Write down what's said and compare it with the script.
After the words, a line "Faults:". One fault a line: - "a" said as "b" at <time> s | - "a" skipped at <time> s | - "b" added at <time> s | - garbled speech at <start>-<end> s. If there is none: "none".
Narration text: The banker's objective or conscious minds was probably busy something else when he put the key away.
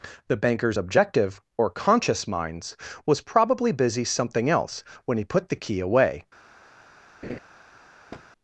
The banker's objective or conscious minds was probably busy something else when he put the key away.
Faults:
none